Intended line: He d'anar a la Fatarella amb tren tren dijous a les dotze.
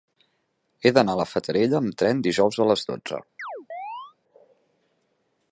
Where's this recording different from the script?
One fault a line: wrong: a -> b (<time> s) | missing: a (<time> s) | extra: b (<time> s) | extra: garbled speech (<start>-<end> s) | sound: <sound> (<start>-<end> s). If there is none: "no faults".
missing: tren (2.2 s)
sound: chirp (3.4-4.1 s)